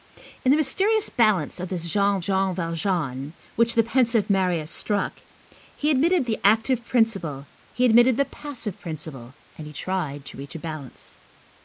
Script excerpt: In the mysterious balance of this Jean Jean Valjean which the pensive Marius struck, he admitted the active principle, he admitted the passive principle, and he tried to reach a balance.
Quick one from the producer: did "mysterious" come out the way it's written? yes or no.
yes